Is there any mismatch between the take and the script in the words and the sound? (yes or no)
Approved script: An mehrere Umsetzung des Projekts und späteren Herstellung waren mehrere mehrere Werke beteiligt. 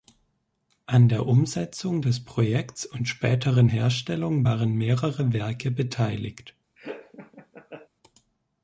yes